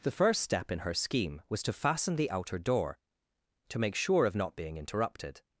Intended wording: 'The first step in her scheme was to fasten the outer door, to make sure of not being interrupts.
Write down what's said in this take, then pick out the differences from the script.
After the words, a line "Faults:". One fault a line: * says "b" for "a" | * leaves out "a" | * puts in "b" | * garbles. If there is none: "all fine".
'The first step in her scheme was to fasten the outer door, to make sure of not being interrupted.
Faults:
* says "interrupted" for "interrupts"